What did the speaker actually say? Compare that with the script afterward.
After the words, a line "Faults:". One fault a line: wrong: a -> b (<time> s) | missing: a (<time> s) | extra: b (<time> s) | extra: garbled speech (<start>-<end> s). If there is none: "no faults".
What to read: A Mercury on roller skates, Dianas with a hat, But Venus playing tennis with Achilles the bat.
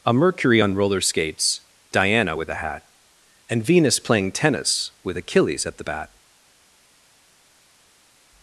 A Mercury on roller skates, Diana with a hat, And Venus playing tennis with Achilles at the bat.
Faults:
wrong: Dianas -> Diana (1.9 s)
wrong: But -> And (3.5 s)
extra: at (5.6 s)